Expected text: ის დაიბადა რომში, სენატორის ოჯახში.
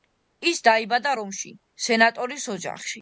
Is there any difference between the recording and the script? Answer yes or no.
no